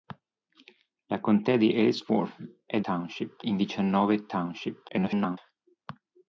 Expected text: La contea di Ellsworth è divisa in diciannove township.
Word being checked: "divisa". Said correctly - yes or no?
no